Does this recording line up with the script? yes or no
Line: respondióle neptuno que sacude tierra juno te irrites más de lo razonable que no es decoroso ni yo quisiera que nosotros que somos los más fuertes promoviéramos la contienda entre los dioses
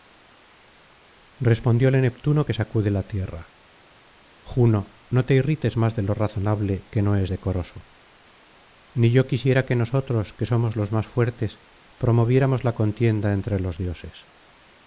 no